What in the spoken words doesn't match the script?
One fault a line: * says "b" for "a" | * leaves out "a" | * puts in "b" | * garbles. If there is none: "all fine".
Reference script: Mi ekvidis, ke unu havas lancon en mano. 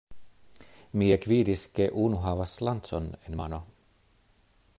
all fine